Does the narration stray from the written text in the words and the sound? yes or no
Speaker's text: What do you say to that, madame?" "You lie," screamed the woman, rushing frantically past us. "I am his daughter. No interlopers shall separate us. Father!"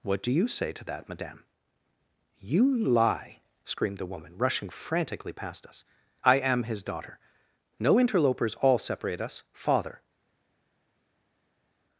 yes